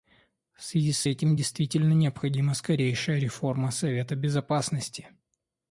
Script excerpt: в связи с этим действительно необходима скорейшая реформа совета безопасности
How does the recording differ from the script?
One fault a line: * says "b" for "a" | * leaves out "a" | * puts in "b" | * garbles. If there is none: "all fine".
all fine